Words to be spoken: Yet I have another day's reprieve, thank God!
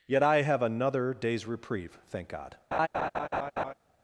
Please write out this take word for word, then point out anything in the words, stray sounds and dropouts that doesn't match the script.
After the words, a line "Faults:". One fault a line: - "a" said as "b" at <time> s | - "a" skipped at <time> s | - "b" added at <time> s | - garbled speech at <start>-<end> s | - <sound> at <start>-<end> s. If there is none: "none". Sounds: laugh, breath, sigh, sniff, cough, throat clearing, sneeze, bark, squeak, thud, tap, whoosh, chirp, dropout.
Yet I have another day's reprieve, thank God!
Faults:
- laugh at 2.7-3.7 s